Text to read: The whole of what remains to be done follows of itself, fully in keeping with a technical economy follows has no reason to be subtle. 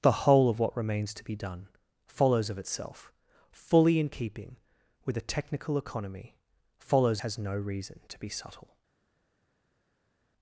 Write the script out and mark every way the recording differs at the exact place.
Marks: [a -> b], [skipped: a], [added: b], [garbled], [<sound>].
The whole of what remains to be done follows of itself, fully in keeping with a technical economy follows has no reason to be subtle.